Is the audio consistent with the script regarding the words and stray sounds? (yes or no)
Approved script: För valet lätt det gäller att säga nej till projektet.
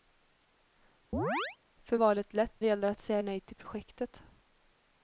no